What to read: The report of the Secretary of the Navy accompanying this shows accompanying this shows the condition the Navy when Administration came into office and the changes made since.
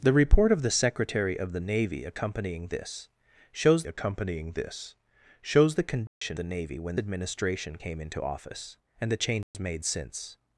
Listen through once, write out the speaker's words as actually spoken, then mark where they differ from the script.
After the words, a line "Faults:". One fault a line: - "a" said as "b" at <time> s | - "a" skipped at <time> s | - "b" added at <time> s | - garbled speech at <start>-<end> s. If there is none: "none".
The report of the Secretary of the Navy accompanying this shows accompanying this shows the condition the Navy when Administration came into office and the changes made since.
Faults:
none